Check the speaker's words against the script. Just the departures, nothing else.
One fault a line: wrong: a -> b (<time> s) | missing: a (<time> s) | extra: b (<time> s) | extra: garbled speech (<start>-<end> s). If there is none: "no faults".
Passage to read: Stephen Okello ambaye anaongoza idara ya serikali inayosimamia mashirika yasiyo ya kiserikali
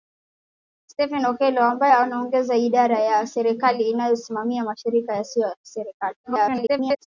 extra: garbled speech (6.2-7.1 s)